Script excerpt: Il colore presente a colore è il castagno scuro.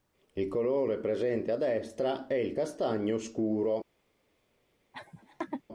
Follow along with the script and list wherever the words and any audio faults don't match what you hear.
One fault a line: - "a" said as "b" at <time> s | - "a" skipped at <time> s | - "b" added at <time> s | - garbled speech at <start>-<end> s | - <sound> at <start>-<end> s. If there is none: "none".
- "colore" said as "destra" at 1.6 s
- laugh at 4.9-5.6 s